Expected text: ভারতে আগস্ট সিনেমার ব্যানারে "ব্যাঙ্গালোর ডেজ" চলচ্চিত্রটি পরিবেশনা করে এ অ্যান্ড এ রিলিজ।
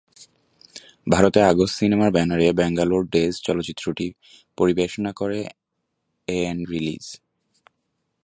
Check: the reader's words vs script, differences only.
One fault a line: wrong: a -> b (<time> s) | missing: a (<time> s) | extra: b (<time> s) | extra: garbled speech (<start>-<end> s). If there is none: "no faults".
missing: এ (6.7 s)